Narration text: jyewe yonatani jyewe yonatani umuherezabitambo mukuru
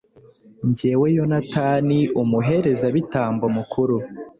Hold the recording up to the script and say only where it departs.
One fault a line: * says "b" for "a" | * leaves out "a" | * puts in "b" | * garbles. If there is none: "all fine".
* leaves out "jyewe yonatani"